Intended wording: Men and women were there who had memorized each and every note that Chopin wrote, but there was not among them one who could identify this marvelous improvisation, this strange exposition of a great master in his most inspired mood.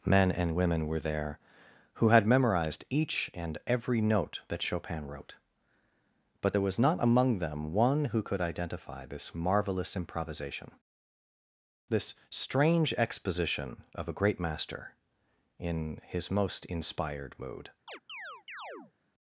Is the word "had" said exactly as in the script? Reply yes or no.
yes